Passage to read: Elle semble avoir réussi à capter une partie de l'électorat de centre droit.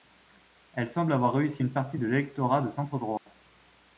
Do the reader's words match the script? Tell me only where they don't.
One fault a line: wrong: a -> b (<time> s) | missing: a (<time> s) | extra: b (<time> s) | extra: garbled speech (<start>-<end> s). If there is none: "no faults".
missing: à capter (1.6 s)